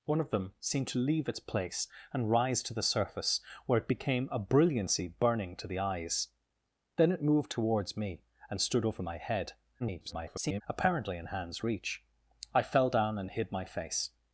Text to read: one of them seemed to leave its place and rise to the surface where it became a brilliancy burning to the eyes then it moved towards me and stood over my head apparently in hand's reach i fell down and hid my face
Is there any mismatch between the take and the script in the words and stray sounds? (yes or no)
yes